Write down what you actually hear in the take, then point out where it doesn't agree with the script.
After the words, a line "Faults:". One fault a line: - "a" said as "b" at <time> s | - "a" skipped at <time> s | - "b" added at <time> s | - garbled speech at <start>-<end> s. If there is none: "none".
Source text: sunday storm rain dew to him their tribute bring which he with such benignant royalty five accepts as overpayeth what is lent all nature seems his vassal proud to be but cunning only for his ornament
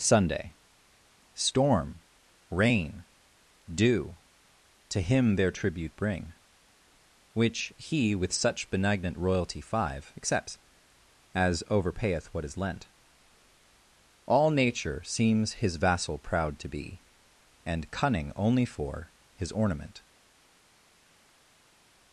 sunday storm rain dew to him their tribute bring which he with such benignant royalty five accepts as overpayeth what is lent all nature seems his vassal proud to be and cunning only for his ornament
Faults:
- "but" said as "and" at 17.6 s